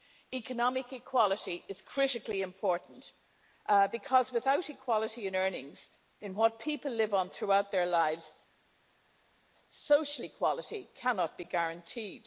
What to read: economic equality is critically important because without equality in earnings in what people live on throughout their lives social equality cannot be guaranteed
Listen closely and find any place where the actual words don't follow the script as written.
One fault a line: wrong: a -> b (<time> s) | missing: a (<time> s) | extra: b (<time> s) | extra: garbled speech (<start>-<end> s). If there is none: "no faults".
no faults